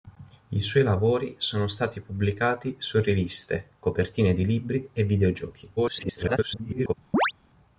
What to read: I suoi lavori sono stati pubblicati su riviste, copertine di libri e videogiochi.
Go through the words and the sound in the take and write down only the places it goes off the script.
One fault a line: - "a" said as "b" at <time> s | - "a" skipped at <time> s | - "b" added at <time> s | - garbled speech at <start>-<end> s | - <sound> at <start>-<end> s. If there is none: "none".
- garbled speech at 5.8-6.9 s
- chirp at 7.1-7.3 s